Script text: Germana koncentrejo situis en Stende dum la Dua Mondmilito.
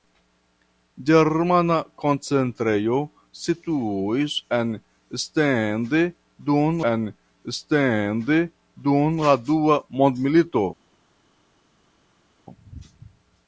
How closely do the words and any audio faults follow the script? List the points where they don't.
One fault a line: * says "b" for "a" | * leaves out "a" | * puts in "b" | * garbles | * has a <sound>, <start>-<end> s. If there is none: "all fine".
* puts in "en Stende dum"